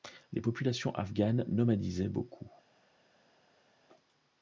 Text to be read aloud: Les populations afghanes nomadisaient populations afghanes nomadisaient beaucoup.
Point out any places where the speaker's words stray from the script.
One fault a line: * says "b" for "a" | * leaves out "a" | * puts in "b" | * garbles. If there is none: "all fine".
* leaves out "populations afghanes nomadisaient"